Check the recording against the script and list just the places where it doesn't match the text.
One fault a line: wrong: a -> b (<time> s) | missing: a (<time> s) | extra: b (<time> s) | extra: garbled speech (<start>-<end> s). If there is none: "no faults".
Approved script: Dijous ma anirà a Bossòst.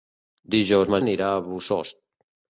no faults